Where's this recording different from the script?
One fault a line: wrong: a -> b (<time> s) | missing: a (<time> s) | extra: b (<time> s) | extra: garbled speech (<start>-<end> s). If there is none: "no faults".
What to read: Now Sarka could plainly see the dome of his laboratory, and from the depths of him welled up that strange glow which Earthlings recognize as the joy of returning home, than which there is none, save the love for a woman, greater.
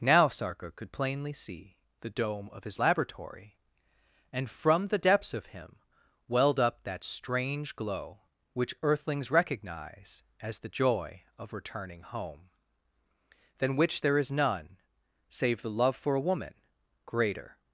no faults